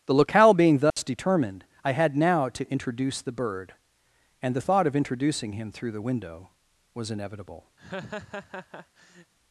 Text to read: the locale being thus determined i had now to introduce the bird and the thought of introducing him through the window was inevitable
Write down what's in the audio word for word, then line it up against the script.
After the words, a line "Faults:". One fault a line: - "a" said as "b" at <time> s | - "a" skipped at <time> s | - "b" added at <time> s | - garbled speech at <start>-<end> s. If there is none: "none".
the locale being thus determined i had now to introduce the bird and the thought of introducing him through the window was inevitable
Faults:
none